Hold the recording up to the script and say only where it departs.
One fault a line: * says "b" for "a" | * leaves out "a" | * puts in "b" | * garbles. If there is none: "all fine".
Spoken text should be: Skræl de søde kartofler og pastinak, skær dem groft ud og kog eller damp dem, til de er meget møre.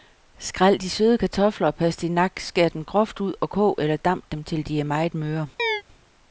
all fine